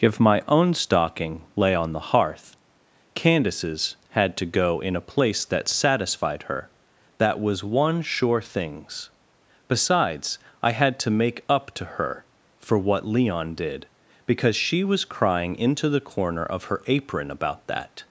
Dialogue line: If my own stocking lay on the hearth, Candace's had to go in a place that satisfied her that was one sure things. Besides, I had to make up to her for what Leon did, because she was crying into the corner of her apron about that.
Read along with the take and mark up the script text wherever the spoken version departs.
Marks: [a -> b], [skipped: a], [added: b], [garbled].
If my own stocking lay on the hearth, Candace's had to go in a place that satisfied her that was one sure things. Besides, I had to make up to her for what Leon did, because she was crying into the corner of her apron about that.